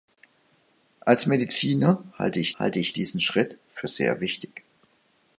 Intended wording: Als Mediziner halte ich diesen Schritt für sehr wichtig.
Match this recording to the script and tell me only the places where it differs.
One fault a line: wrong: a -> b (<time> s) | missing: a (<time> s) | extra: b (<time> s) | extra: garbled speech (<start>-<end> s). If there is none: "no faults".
extra: halte ich (2.6 s)